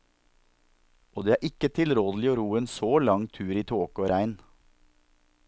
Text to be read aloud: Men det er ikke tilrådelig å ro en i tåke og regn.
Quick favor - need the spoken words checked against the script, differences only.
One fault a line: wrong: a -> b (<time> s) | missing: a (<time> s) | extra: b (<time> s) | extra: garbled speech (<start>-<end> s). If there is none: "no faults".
wrong: Men -> Og (1.1 s)
extra: så lang tur (2.7 s)